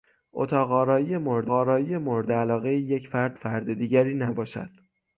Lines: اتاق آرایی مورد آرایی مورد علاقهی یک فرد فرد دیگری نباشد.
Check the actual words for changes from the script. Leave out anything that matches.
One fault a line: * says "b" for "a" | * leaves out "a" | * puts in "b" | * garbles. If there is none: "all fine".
all fine